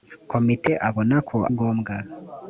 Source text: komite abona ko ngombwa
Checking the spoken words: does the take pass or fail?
pass